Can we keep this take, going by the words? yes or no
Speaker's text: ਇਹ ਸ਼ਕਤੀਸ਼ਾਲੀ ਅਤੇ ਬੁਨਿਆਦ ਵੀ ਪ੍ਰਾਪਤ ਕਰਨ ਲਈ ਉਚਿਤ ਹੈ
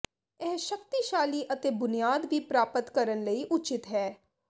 yes